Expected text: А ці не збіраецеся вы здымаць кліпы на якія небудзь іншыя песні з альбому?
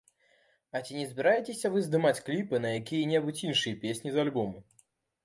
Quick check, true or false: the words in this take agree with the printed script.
true